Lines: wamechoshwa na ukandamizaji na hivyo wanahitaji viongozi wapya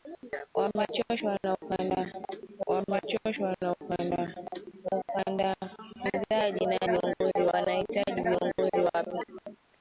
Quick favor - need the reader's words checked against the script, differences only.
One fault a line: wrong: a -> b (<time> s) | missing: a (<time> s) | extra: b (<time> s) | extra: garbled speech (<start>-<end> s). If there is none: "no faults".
extra: wamechoshwa na (2.7 s)
wrong: hivyo -> viongozi (6.8 s)